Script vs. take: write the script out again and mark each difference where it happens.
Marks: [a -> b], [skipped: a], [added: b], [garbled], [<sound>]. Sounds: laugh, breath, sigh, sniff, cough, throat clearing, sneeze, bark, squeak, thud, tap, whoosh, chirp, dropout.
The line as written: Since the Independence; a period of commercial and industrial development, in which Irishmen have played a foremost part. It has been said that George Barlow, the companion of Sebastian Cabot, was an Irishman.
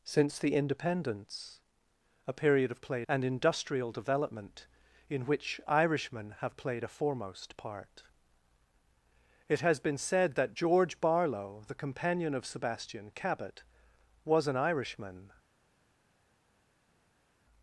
Since the Independence; a period of [commercial -> played] and industrial development, in which Irishmen have played a foremost part. It has been said that George Barlow, the companion of Sebastian Cabot, was an Irishman.